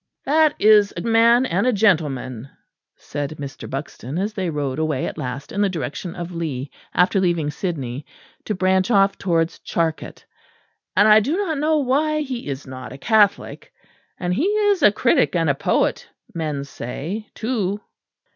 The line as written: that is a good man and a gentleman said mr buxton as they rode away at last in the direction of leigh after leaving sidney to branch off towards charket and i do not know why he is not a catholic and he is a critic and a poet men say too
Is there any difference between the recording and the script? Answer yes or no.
yes